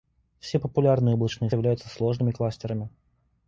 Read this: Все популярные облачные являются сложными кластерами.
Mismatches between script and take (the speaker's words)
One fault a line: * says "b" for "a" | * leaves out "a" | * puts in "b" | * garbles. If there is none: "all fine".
all fine